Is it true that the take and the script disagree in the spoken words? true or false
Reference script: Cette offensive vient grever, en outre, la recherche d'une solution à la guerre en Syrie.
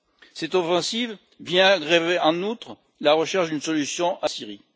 true